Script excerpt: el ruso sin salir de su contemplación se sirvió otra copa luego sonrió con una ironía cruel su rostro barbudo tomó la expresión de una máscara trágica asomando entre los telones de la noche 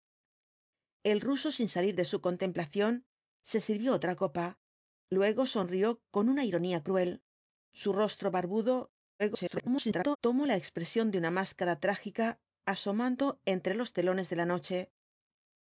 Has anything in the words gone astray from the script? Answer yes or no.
yes